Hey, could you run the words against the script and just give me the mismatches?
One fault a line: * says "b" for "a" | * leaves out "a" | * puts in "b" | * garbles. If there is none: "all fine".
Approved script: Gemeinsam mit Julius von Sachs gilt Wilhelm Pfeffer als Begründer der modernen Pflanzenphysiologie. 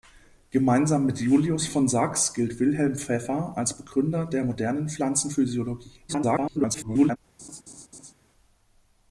* garbles